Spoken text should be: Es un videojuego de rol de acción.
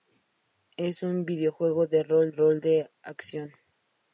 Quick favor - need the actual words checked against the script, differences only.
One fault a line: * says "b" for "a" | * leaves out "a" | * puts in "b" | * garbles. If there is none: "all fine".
* puts in "rol"